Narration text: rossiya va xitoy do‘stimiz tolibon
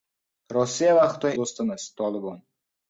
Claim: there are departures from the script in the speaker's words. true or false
false